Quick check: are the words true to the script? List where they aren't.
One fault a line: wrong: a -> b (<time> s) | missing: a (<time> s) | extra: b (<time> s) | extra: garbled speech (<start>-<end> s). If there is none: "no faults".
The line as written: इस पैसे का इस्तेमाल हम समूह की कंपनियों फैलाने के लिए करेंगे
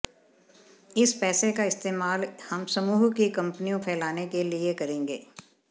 no faults